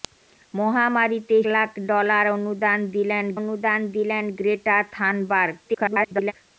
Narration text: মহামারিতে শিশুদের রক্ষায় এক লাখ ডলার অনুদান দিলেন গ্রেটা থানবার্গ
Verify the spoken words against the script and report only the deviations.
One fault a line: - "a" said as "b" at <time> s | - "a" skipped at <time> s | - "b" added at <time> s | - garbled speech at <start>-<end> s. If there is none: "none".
- "শিশুদের রক্ষায় এক লাখ ডলার" said as "লাখ ডলার অনুদান দিলেন" at 1.5 s
- garbled speech at 5.6-6.3 s